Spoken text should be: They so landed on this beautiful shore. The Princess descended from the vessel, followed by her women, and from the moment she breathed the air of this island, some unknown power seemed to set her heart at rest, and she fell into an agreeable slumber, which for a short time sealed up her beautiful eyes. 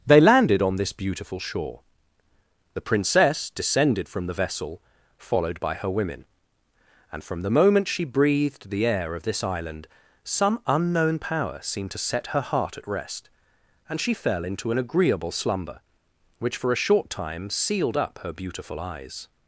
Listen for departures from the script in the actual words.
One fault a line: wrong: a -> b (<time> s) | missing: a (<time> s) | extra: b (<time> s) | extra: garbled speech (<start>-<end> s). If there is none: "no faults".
missing: so (0.2 s)